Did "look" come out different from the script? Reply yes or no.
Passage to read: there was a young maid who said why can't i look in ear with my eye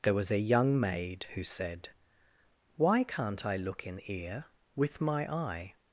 no